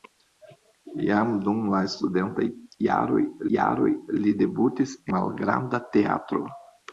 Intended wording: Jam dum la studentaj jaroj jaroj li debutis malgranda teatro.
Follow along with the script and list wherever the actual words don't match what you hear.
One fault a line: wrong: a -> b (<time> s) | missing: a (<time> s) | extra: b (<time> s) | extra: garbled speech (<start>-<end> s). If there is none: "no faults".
no faults